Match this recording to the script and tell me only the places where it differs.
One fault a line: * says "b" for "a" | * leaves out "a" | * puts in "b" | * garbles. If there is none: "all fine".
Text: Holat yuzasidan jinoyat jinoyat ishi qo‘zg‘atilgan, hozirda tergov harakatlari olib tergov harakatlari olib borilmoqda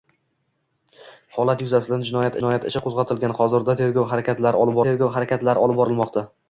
all fine